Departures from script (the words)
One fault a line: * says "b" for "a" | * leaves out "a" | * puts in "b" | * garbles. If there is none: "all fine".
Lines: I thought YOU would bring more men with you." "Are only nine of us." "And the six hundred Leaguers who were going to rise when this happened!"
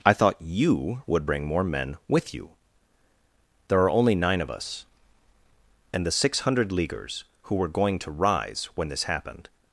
* puts in "There"